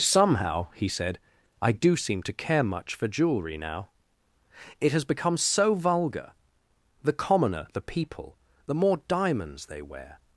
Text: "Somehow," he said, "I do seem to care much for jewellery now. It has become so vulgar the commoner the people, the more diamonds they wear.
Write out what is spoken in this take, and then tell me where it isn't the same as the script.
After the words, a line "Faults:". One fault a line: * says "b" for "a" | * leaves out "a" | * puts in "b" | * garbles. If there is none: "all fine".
"Somehow," he said, "I do seem to care much for jewellery now. It has become so vulgar the commoner the people, the more diamonds they wear.
Faults:
all fine